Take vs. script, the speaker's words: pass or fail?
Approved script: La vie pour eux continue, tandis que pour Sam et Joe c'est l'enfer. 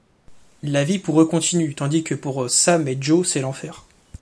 pass